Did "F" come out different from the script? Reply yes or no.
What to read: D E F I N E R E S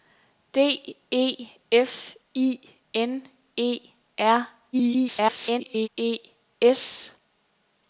no